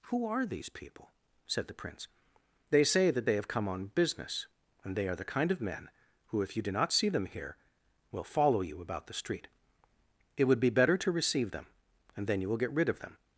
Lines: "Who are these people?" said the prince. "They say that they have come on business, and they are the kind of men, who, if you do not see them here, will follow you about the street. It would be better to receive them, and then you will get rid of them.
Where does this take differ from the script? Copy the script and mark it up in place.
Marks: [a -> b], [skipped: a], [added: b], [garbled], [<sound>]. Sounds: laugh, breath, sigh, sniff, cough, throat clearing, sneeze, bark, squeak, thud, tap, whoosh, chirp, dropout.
"Who are these people?" said the prince. "They say that they have come on business, and they are the kind of men, who, if you do not see them here, will follow you about the street. It would be better to receive them, and then you will get rid of them.